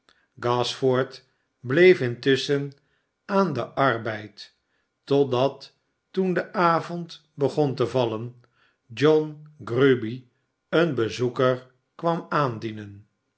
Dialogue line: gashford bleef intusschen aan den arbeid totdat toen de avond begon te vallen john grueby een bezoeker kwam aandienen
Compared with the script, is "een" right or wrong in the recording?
right